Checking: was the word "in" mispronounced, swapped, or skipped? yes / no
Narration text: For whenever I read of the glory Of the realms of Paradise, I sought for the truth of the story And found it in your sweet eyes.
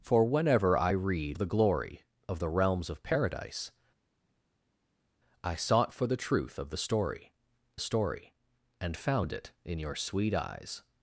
no